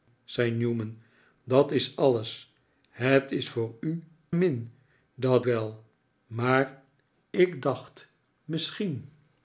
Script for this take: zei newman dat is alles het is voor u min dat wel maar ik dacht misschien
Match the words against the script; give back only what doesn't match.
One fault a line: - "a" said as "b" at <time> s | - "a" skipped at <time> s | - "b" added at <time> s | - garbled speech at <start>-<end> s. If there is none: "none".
none